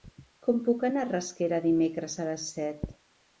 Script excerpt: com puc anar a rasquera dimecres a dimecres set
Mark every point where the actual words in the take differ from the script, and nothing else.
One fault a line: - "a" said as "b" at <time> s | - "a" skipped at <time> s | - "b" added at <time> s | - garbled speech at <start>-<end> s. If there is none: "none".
- "dimecres" said as "les" at 2.3 s